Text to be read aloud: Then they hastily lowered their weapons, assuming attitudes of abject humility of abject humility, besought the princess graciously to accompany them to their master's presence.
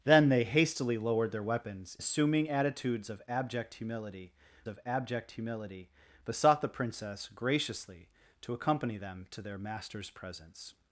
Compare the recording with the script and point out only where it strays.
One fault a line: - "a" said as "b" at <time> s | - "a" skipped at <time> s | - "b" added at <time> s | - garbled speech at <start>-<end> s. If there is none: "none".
none